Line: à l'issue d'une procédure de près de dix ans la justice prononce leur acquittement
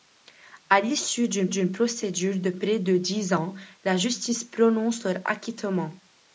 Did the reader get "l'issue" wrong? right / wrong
right